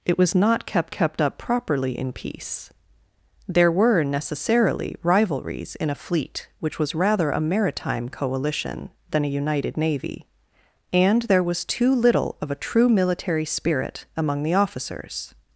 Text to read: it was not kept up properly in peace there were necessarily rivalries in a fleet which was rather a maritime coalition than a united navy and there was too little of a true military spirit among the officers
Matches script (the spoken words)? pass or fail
fail